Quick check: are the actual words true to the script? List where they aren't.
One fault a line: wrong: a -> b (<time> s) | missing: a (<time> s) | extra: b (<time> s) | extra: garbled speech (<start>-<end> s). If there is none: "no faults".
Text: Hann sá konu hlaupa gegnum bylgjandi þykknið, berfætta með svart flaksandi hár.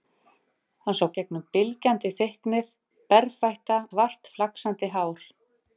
missing: konu hlaupa (1.1 s)
missing: með (3.8 s)